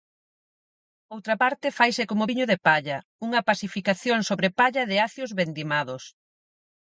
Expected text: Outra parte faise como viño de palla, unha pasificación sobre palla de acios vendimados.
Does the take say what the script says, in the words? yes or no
yes